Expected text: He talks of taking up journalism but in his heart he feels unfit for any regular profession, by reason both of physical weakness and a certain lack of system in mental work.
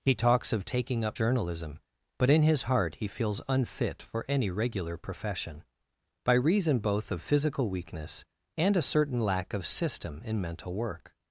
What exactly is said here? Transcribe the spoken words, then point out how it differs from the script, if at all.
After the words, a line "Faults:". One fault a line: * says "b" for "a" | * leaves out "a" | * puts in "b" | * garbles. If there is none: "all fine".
He talks of taking up journalism but in his heart he feels unfit for any regular profession, by reason both of physical weakness and a certain lack of system in mental work.
Faults:
all fine